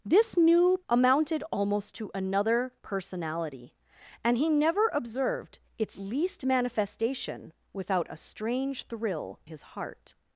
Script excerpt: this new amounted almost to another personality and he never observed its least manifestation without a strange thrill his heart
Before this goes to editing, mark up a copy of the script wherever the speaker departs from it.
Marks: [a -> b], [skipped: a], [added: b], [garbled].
this new amounted almost to another personality and he never observed its least manifestation without a strange thrill his heart